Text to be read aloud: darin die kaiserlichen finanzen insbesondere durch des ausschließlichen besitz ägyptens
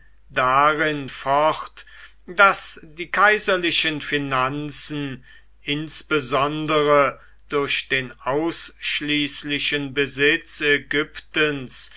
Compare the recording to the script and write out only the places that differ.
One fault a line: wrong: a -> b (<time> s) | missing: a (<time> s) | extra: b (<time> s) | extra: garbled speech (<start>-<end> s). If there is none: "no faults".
extra: fort daß (1.1 s)
wrong: des -> den (7.9 s)